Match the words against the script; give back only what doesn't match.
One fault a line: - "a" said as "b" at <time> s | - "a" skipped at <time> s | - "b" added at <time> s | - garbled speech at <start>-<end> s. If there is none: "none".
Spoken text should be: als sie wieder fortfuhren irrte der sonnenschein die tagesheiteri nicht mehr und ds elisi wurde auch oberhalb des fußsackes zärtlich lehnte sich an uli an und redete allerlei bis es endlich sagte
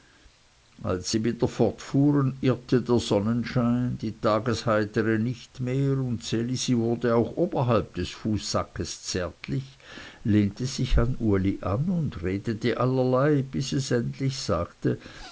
none